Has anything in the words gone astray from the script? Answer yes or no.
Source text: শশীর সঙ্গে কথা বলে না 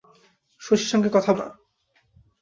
yes